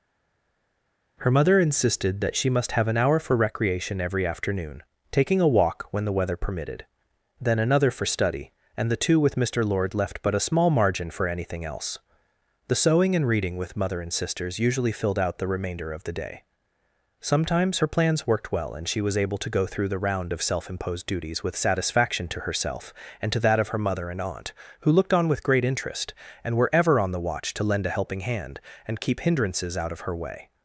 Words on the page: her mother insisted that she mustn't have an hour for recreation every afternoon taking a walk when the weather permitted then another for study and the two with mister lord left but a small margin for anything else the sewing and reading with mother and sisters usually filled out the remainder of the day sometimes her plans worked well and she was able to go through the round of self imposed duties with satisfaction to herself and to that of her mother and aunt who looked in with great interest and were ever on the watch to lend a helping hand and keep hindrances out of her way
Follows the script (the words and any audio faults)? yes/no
no